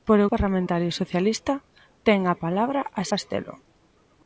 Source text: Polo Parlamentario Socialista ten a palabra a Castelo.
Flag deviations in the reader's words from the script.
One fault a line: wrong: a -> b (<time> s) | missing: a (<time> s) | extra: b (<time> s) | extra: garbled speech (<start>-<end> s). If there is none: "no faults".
no faults